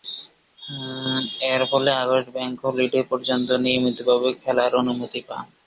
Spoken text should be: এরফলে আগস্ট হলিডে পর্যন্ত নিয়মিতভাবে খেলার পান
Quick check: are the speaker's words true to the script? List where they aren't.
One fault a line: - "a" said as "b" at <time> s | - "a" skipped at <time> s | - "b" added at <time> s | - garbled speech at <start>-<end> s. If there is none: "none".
- "ব্যাংক" added at 2.4 s
- "অনুমতি" added at 4.8 s